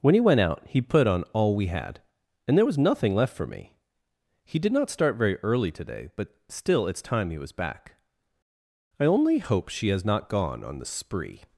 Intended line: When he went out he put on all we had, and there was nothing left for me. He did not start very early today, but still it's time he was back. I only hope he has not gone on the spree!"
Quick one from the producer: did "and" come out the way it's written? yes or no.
yes